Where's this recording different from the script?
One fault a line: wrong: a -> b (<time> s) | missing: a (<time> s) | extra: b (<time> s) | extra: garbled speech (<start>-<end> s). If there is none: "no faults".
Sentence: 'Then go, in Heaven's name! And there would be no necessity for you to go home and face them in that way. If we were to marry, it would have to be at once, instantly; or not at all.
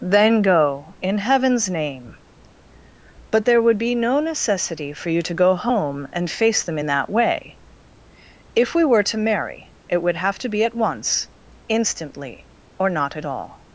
wrong: And -> But (3.3 s)